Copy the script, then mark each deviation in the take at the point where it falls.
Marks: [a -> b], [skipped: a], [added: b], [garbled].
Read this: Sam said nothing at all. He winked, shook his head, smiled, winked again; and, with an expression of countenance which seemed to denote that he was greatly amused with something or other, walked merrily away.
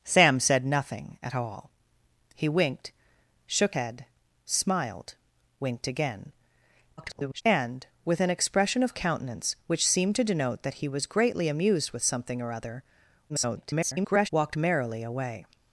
Sam said nothing at all. He winked, shook [skipped: his] head, smiled, winked again; [garbled] and, with an expression of countenance which seemed to denote that he was greatly amused with something or other, [garbled] walked merrily away.